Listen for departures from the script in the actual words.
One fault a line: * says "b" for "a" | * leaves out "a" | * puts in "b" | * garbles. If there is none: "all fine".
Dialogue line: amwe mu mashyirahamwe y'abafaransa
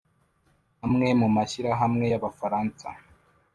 all fine